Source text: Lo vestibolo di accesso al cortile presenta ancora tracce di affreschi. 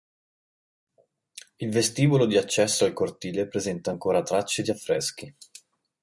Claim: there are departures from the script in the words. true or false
true